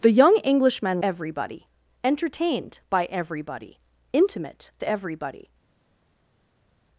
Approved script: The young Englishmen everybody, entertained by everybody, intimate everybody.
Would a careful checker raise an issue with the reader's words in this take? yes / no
no